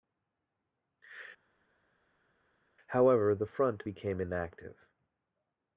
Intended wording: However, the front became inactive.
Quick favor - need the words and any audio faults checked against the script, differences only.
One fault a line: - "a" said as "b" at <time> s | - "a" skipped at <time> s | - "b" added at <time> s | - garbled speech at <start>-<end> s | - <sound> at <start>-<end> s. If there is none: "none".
none